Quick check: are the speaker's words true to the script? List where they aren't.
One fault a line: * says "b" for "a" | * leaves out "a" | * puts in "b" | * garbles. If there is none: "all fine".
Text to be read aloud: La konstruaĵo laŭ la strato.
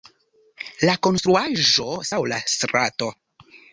all fine